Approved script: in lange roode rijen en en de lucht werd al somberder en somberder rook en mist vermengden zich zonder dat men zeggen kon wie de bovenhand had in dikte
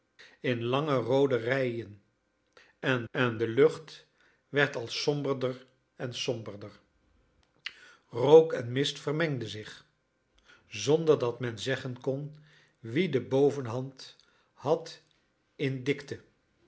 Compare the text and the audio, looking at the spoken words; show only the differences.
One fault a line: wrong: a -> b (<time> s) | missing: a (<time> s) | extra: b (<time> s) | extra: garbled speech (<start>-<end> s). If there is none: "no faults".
no faults